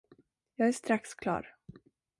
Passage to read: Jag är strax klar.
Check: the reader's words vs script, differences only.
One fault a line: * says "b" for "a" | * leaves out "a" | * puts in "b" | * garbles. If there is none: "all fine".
all fine